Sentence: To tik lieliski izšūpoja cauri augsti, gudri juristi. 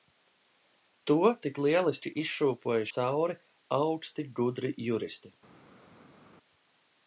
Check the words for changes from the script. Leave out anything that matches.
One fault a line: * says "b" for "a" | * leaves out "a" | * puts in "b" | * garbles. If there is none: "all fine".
all fine